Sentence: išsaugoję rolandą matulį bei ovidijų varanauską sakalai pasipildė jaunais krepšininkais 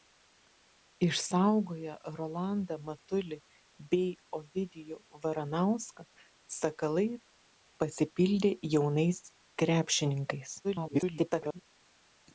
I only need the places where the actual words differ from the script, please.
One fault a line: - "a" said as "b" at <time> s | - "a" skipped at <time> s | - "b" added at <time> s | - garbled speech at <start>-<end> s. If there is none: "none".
- garbled speech at 10.6-11.6 s